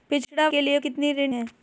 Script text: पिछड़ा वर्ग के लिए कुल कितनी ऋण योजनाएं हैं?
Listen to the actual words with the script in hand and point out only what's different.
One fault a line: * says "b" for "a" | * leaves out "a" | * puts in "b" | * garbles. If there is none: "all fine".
* leaves out "वर्ग"
* leaves out "कुल"
* leaves out "योजनाएं"